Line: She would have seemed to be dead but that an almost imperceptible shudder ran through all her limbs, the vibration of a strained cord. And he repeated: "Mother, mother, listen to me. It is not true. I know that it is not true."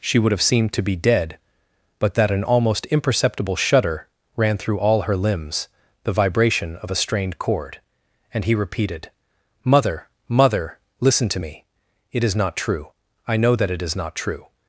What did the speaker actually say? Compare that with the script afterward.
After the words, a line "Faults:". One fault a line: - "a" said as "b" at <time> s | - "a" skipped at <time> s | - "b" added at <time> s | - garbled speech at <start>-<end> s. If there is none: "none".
She would have seemed to be dead but that an almost imperceptible shudder ran through all her limbs, the vibration of a strained cord. And he repeated: "Mother, mother, listen to me. It is not true. I know that it is not true."
Faults:
none